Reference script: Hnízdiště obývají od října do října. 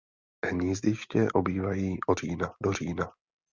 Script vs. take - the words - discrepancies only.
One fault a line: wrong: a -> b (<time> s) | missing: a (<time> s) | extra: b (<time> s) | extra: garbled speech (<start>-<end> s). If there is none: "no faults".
no faults